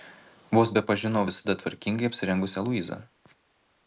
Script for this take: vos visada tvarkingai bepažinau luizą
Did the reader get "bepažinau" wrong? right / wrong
wrong